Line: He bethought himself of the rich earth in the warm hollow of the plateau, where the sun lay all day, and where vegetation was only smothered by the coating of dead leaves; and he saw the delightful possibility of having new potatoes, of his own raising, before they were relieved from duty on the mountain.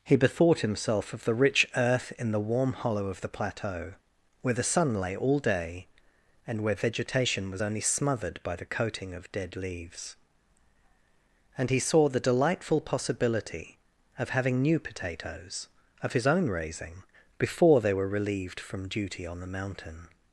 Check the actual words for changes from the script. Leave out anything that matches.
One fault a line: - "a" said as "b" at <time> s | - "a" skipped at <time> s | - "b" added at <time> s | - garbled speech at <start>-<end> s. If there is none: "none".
none